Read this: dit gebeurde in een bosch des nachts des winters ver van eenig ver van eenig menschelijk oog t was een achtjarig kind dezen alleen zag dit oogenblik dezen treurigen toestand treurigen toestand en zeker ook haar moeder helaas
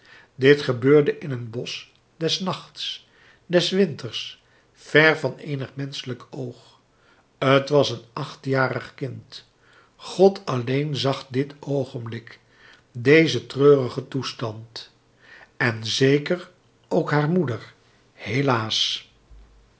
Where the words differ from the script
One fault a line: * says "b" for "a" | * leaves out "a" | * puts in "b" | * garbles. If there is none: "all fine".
* leaves out "ver van eenig"
* says "god" for "dezen"
* leaves out "treurigen toestand"